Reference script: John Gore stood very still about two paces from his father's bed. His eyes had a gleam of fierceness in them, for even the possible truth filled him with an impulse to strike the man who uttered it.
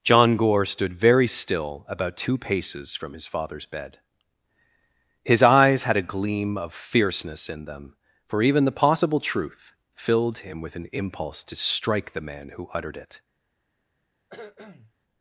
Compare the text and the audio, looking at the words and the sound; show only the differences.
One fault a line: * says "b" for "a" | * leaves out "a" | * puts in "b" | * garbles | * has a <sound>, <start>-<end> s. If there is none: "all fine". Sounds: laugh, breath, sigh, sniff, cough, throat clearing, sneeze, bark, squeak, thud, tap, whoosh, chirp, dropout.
* has a cough, 14.3-14.9 s